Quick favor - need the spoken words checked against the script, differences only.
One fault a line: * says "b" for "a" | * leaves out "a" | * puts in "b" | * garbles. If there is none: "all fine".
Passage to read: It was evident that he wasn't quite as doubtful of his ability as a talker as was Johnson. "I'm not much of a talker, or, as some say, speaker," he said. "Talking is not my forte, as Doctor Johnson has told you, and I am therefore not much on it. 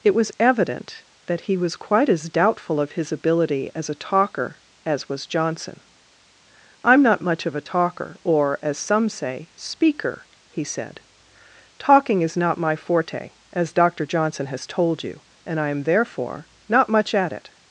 * says "was" for "wasn't"
* says "at" for "on"